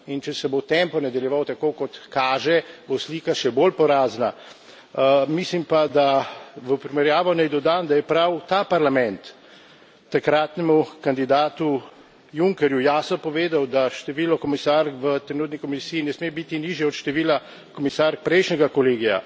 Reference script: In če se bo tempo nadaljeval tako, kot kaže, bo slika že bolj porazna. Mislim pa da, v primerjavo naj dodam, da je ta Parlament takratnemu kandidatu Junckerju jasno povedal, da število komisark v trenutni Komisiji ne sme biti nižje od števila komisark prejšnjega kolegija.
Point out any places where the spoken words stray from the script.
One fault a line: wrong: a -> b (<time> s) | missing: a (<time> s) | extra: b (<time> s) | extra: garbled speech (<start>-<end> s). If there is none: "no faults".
wrong: že -> še (3.3 s)
extra: prav (8.1 s)